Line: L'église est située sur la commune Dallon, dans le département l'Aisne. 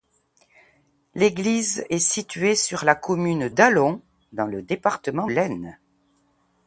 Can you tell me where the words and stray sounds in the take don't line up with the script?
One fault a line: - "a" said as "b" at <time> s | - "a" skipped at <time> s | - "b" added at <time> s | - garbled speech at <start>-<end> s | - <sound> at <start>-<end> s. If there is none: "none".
none